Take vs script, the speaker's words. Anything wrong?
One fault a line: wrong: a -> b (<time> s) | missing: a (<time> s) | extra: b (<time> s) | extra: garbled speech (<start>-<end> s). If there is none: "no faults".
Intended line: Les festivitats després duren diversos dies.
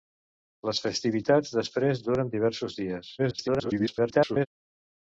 extra: garbled speech (3.2-4.5 s)